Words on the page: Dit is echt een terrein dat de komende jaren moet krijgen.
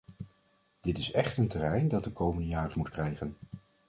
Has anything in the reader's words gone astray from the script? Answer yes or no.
no